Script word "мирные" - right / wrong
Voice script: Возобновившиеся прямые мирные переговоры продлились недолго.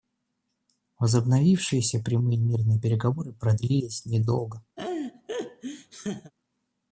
right